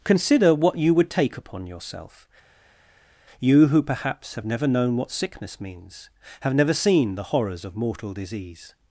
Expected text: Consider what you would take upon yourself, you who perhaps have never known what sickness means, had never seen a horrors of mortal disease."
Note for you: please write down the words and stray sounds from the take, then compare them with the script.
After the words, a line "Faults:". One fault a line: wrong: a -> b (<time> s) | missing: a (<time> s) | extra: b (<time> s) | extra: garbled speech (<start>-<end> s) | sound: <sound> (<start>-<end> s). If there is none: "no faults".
Consider what you would take upon yourself, you who perhaps have never known what sickness means, have never seen the horrors of mortal disease."
Faults:
wrong: had -> have (6.4 s)
wrong: a -> the (7.2 s)